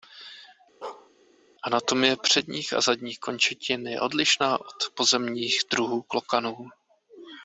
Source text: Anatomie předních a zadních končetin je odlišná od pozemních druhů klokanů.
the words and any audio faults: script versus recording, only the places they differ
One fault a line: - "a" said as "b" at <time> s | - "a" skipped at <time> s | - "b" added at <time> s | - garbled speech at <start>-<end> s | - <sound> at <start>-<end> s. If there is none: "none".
- bark at 0.8-1.1 s